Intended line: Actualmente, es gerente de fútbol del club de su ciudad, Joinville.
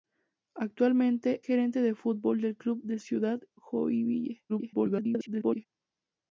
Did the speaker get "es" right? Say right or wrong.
wrong